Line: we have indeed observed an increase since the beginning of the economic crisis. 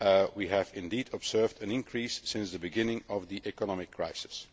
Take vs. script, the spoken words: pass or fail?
pass